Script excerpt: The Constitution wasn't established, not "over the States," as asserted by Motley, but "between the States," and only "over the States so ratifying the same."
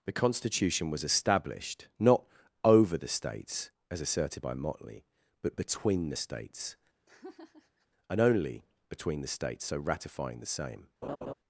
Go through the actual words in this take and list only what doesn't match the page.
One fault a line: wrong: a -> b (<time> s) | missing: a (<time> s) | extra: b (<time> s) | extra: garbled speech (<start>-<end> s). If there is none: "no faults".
wrong: wasn't -> was (0.9 s)
wrong: over -> between (8.9 s)